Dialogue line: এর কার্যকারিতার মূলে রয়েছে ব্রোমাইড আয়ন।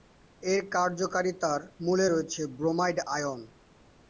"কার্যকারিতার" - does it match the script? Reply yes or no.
yes